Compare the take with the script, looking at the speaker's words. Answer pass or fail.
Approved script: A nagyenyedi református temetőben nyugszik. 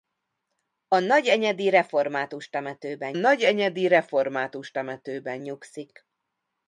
fail